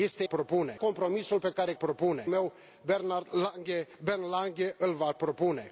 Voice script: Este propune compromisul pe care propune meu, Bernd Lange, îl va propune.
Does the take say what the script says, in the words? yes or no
yes